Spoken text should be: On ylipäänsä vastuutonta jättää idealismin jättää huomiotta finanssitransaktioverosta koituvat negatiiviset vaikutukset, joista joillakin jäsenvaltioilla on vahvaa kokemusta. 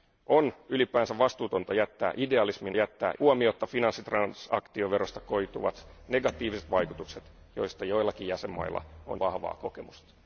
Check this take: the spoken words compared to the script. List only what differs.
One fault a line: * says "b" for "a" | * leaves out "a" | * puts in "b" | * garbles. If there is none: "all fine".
all fine